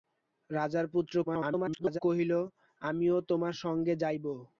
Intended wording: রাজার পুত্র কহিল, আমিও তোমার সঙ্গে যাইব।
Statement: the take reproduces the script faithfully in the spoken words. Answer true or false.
false